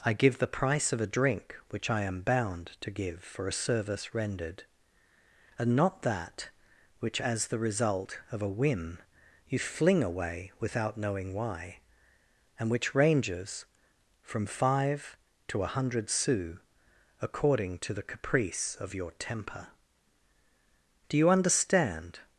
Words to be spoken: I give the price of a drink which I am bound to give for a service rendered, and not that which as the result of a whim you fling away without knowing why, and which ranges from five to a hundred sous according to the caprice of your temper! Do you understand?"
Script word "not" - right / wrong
right